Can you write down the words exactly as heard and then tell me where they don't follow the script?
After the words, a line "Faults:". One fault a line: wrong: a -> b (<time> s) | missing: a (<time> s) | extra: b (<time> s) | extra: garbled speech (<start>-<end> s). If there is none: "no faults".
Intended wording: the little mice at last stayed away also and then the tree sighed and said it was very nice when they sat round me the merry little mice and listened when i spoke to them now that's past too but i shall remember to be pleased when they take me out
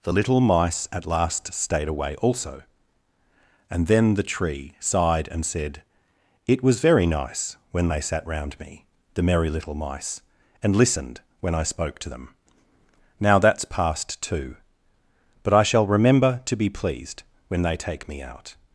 the little mice at last stayed away also and then the tree sighed and said it was very nice when they sat round me the merry little mice and listened when i spoke to them now that's past too but i shall remember to be pleased when they take me out
Faults:
no faults